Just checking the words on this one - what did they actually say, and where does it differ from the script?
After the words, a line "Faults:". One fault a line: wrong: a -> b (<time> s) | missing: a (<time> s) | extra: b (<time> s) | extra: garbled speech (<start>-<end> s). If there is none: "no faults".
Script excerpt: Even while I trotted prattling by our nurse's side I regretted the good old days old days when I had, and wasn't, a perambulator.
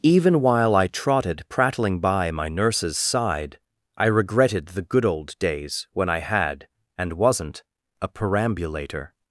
Even while I trotted prattling by my nurse's side I regretted the good old days when I had, and wasn't, a perambulator.
Faults:
wrong: our -> my (2.3 s)
missing: old days (5.9 s)